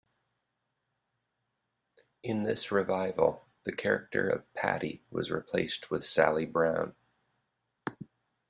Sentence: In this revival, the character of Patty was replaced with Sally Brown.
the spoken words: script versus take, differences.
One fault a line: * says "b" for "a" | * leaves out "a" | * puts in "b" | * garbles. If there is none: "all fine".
all fine